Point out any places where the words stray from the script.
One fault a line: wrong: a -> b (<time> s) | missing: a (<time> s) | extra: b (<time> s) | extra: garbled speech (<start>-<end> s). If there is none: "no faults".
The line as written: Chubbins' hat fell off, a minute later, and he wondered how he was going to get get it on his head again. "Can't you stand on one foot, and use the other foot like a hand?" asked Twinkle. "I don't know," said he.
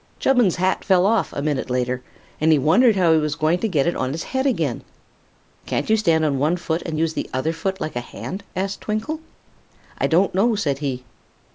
missing: get (3.8 s)